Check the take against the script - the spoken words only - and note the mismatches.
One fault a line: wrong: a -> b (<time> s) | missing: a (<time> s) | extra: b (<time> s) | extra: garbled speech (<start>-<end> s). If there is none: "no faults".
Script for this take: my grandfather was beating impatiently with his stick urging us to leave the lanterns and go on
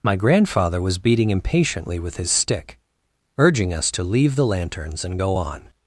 no faults